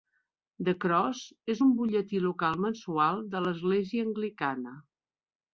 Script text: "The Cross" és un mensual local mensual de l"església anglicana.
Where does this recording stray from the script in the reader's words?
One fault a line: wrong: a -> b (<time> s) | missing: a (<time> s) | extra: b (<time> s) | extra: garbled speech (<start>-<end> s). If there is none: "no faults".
wrong: mensual -> butlletí (1.8 s)